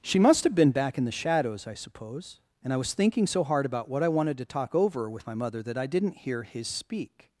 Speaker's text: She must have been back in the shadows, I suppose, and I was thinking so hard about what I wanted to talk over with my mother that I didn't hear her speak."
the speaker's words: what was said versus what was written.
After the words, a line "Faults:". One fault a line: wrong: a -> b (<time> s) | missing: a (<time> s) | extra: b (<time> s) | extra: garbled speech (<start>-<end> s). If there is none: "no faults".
She must have been back in the shadows, I suppose, and I was thinking so hard about what I wanted to talk over with my mother that I didn't hear his speak."
Faults:
wrong: her -> his (6.4 s)